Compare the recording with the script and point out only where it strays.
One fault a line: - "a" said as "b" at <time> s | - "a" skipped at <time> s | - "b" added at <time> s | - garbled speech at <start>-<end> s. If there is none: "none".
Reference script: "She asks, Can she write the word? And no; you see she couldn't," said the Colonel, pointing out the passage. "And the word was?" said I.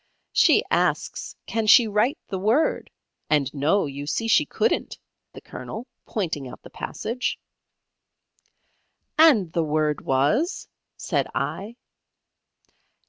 - "said" skipped at 5.0 s